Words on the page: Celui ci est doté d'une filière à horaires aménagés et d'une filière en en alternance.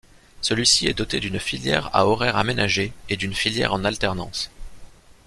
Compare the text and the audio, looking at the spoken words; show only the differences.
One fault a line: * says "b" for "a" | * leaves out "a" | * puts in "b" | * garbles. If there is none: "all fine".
* leaves out "en"